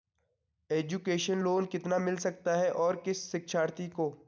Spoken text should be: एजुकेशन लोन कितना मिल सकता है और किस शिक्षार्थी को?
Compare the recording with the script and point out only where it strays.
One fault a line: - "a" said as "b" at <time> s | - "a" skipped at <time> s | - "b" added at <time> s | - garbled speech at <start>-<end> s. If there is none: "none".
none